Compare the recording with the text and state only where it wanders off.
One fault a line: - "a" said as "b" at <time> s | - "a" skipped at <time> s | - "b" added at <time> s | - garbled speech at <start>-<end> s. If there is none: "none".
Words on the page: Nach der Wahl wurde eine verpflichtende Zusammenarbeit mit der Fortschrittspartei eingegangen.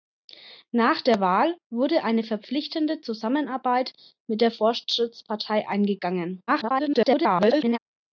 - garbled speech at 6.5-7.8 s